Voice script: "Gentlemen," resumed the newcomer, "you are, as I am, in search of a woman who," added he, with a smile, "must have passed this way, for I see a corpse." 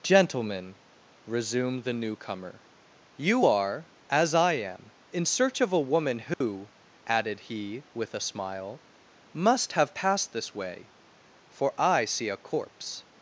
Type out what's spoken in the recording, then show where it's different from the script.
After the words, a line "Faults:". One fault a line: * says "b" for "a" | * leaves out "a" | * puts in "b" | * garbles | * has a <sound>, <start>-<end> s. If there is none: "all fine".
"Gentlemen," resumed the newcomer, "you are, as I am, in search of a woman who," added he, with a smile, "must have passed this way, for I see a corpse."
Faults:
* has a dropout, 6.3-6.4 s